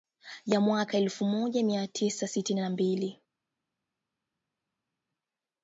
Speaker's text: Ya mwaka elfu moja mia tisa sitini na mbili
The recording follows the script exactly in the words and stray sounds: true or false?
true